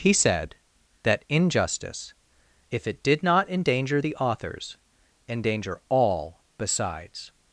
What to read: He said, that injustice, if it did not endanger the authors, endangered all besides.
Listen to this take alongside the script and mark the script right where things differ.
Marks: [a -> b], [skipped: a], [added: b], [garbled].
He said, that injustice, if it did not endanger the authors, [endangered -> endanger] all besides.